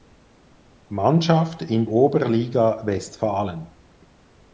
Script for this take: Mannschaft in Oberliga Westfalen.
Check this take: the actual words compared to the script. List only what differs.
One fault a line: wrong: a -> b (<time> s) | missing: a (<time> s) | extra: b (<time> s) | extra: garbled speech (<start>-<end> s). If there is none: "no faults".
no faults